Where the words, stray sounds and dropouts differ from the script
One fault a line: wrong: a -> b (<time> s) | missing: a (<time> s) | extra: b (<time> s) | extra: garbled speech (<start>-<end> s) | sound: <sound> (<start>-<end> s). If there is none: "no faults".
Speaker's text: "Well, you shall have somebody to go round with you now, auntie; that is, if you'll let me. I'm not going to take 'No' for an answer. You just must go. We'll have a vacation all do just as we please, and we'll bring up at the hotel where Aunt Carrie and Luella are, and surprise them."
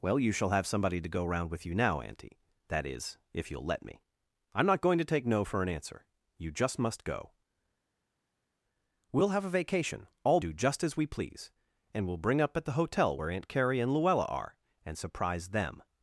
no faults